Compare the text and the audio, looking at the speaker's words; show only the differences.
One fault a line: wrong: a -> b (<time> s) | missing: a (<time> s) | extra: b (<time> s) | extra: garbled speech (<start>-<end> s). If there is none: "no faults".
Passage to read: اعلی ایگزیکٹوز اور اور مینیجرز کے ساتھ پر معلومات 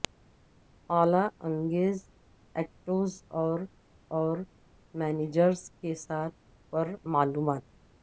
no faults